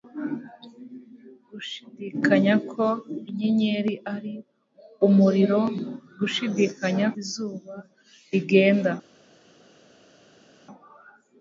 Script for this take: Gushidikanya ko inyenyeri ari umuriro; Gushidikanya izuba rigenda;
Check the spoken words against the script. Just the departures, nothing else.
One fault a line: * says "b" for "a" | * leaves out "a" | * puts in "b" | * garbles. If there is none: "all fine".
all fine